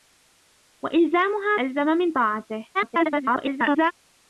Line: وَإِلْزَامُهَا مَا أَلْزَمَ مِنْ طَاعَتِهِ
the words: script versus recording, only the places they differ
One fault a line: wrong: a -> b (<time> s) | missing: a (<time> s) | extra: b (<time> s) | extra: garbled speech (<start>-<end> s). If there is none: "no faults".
missing: مَا (1.6 s)
extra: garbled speech (2.7-3.9 s)